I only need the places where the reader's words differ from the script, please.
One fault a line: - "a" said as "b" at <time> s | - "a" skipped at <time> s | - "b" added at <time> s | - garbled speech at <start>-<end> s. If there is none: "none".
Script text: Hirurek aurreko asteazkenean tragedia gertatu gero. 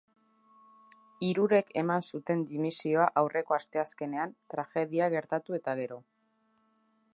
- "eman zuten dimisioa" added at 1.8 s
- "eta" added at 5.6 s